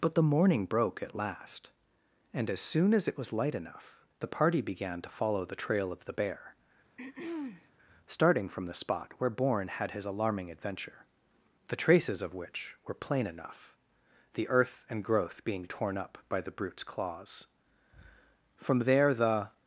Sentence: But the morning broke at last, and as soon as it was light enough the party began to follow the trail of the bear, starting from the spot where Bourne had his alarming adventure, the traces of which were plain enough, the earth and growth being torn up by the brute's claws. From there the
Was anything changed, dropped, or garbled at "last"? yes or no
no